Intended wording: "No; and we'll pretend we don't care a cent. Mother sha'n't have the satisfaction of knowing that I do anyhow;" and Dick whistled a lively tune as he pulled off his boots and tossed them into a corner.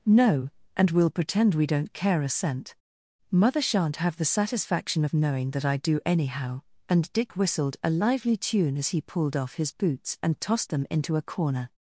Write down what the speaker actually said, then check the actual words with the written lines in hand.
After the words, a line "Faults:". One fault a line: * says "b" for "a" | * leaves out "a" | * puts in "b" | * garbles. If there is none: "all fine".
"No; and we'll pretend we don't care a cent. Mother sha'n't have the satisfaction of knowing that I do anyhow;" and Dick whistled a lively tune as he pulled off his boots and tossed them into a corner.
Faults:
all fine